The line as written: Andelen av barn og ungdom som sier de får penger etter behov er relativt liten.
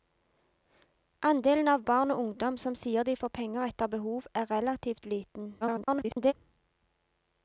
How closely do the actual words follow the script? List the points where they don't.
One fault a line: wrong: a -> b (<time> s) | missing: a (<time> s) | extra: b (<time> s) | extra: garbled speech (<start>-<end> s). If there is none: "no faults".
extra: garbled speech (5.6-6.3 s)